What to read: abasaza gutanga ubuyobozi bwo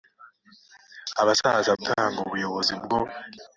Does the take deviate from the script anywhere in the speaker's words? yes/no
no